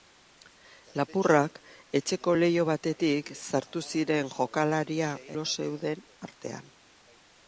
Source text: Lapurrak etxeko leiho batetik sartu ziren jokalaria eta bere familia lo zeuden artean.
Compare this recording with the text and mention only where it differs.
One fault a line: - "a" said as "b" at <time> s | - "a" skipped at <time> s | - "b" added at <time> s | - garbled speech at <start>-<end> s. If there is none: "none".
- "eta bere familia" skipped at 5.1 s